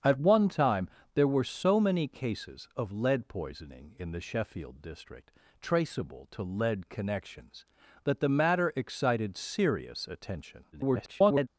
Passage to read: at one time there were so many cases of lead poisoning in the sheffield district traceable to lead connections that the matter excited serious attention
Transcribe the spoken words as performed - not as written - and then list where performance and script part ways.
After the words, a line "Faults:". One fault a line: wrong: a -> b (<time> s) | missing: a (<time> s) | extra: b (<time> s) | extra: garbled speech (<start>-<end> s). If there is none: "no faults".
at one time there were so many cases of lead poisoning in the sheffield district traceable to lead connections that the matter excited serious attention [garbled]
Faults:
extra: garbled speech (10.7-11.5 s)